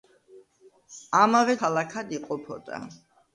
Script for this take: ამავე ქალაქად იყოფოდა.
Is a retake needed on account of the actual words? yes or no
no